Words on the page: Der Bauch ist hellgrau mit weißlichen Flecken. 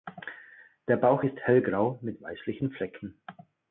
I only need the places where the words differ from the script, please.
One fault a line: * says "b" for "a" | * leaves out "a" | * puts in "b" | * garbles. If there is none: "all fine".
all fine